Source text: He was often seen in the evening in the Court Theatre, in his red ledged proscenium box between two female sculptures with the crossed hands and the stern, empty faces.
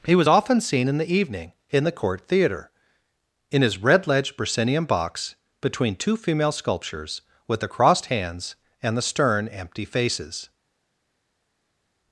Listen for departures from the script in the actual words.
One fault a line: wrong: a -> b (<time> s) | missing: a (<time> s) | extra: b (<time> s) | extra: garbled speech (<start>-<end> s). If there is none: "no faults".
no faults